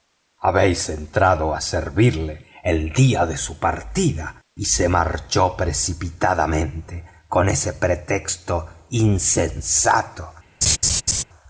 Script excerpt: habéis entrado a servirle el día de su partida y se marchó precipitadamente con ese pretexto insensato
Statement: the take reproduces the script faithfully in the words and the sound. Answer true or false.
false